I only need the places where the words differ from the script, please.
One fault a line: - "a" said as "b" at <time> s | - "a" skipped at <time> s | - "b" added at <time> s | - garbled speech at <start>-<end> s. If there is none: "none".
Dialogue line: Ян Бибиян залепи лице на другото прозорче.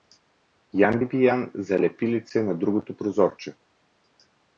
none